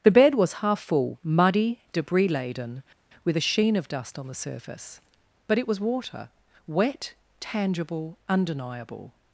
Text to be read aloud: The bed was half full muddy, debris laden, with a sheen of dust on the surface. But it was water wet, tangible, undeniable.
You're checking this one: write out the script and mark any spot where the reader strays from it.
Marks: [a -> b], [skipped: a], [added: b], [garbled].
The bed was half full muddy, debris laden, with a sheen of dust on the surface. But it was water wet, tangible, undeniable.